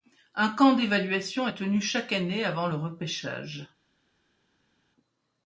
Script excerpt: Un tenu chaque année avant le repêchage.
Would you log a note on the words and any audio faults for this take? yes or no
yes